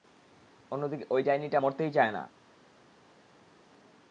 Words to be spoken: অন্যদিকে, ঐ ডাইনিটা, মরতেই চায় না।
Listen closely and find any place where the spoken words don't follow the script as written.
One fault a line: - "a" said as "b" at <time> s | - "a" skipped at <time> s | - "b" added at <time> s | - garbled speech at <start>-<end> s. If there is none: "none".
none